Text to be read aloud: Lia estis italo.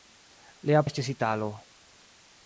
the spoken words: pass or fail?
pass